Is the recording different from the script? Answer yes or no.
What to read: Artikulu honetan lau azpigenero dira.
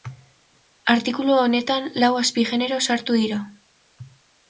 yes